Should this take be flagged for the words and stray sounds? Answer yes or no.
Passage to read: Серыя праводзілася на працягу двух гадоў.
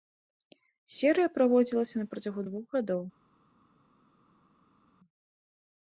no